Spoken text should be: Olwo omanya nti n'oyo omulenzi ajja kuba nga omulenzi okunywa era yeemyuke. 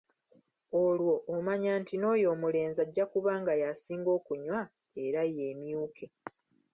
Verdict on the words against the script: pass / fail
fail